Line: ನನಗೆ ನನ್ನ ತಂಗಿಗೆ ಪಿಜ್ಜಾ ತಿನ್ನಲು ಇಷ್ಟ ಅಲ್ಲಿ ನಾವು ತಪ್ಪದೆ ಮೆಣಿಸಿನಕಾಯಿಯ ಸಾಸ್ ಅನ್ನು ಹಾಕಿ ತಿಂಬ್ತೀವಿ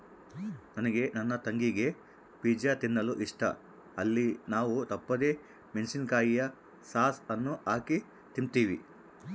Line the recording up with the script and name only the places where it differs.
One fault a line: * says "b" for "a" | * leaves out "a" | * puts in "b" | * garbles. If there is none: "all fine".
all fine